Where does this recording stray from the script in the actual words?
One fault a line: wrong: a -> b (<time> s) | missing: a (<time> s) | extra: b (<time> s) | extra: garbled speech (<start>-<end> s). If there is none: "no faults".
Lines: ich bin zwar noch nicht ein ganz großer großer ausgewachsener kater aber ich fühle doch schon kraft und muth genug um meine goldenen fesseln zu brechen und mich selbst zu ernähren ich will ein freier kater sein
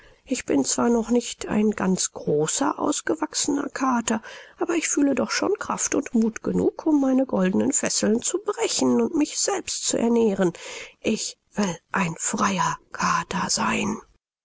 missing: großer (2.8 s)